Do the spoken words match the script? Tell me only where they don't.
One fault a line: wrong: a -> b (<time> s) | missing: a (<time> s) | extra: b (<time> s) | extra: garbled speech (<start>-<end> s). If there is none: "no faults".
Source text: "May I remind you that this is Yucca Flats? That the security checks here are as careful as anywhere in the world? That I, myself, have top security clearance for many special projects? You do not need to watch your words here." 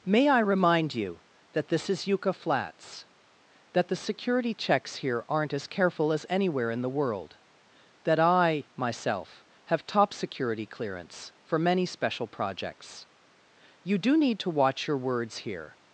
wrong: are -> aren't (5.3 s)
missing: not (14.2 s)